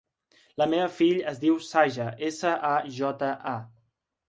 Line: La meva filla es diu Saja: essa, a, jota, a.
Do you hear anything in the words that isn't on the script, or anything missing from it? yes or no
no